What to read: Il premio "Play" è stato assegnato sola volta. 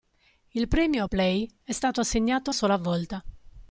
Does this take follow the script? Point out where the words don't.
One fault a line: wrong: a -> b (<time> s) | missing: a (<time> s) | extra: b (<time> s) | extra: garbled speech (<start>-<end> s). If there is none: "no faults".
no faults